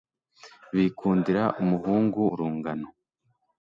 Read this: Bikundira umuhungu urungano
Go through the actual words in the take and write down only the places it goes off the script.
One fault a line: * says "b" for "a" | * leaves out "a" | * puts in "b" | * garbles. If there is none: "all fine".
all fine